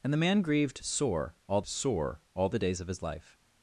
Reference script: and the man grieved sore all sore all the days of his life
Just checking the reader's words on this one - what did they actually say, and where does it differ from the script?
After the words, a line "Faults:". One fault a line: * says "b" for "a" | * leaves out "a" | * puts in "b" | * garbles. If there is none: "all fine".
and the man grieved sore all sore all the days of his life
Faults:
all fine